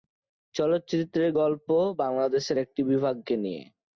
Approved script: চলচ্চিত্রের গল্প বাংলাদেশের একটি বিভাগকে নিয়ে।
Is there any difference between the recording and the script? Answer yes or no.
no